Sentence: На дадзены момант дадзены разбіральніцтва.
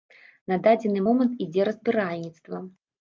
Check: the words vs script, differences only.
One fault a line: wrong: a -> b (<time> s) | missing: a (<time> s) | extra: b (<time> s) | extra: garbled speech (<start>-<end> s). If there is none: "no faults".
wrong: дадзены -> ідзе (1.5 s)